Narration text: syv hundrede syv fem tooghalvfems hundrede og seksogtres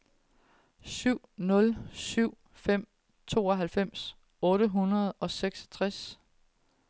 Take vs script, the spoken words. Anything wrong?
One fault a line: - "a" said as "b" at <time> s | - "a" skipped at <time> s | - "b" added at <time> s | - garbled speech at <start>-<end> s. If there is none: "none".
- "hundrede" said as "nul" at 1.4 s
- "otte" added at 4.4 s